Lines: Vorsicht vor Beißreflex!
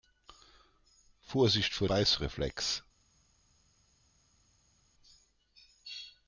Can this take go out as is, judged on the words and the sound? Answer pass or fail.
pass